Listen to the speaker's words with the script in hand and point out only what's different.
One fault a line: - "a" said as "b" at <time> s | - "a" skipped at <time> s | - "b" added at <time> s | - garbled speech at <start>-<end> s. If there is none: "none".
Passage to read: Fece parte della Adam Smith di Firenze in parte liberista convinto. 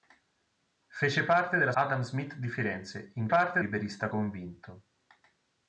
none